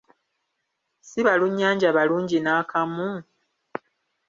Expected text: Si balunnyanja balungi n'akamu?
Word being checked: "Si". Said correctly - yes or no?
yes